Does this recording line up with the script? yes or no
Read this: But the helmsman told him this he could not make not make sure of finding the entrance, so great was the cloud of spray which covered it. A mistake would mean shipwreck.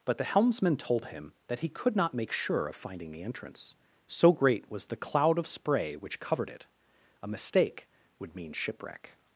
no